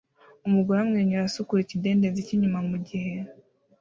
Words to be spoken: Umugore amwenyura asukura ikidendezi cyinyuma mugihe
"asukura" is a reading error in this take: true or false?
false